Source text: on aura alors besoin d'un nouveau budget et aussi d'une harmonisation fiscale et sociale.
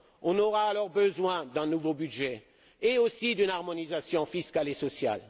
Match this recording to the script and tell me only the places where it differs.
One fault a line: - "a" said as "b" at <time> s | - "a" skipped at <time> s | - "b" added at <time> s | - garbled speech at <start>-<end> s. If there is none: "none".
none